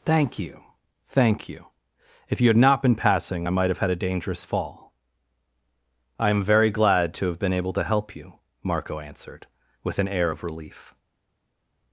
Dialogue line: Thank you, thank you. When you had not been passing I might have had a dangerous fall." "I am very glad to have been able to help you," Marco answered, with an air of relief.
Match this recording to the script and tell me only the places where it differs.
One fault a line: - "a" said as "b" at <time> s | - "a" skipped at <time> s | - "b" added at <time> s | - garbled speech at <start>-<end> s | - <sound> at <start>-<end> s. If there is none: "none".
- "When" said as "If" at 2.3 s